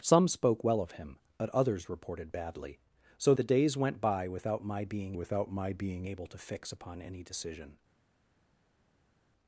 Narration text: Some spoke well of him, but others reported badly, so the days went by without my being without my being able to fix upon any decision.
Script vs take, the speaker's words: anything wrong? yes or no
no